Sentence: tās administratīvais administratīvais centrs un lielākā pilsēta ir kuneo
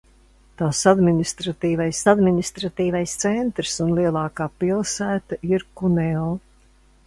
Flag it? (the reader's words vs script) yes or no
no